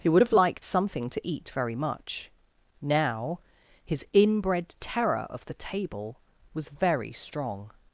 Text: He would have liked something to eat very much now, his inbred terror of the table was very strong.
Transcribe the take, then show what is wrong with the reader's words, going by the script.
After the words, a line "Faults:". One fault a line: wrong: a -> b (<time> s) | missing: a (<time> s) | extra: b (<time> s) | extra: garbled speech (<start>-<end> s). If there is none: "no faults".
He would have liked something to eat very much now, his inbred terror of the table was very strong.
Faults:
no faults